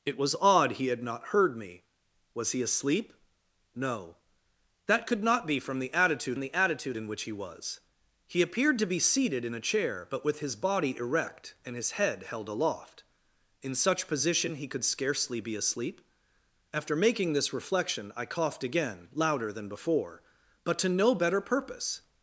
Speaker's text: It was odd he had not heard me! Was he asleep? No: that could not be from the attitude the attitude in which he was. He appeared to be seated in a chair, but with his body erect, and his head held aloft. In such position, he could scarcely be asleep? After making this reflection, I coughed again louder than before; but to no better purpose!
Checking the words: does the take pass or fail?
pass